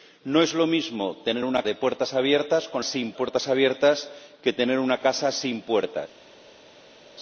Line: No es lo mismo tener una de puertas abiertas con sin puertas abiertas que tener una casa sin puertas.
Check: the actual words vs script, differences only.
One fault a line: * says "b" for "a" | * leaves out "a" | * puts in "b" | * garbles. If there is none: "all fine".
all fine